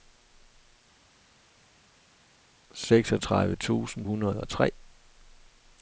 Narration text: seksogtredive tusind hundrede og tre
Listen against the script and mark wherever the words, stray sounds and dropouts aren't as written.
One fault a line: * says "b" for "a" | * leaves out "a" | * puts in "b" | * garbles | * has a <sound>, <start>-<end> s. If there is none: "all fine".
all fine